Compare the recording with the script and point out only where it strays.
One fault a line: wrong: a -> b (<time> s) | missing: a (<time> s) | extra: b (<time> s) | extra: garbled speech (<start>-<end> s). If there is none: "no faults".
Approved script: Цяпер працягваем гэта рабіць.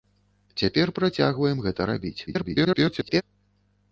extra: garbled speech (2.3-3.2 s)